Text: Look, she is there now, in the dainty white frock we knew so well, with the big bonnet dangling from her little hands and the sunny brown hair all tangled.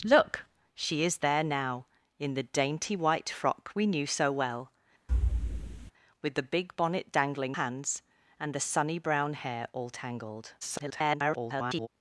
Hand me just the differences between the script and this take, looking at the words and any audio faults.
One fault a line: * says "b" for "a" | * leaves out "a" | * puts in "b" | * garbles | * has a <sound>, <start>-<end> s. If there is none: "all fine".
* has a thud, 5.1-5.9 s
* leaves out "from her little"
* garbles